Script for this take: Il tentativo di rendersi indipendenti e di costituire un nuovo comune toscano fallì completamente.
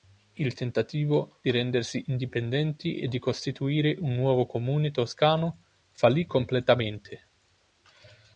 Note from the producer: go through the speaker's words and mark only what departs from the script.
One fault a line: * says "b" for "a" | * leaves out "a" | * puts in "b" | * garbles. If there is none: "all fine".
all fine